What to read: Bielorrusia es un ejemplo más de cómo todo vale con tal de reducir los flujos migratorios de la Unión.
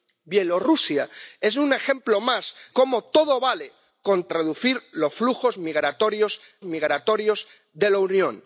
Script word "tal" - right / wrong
wrong